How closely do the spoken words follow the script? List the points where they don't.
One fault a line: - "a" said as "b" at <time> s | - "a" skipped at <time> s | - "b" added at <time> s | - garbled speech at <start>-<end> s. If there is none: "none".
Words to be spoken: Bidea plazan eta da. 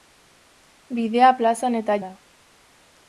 none